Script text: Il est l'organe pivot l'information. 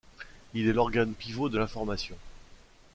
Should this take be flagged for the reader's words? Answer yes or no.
yes